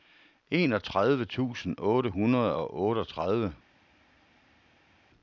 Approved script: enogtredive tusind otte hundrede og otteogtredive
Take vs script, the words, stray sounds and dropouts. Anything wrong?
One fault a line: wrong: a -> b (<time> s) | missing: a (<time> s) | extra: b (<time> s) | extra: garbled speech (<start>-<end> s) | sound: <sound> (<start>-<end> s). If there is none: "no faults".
no faults